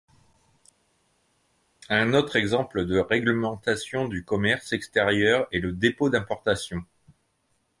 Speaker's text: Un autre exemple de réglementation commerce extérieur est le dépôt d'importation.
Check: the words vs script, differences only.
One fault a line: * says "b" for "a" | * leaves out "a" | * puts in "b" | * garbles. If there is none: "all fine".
* puts in "du"